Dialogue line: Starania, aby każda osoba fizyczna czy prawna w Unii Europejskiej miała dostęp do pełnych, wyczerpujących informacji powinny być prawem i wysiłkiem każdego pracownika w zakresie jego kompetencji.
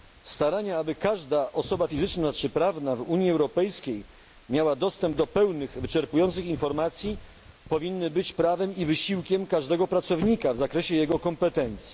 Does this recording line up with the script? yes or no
yes